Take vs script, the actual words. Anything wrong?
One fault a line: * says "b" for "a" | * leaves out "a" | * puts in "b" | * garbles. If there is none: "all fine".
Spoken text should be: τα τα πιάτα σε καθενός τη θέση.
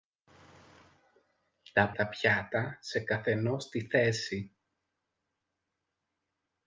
all fine